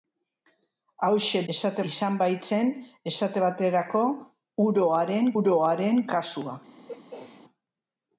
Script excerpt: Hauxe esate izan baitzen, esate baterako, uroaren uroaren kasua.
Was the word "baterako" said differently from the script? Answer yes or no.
no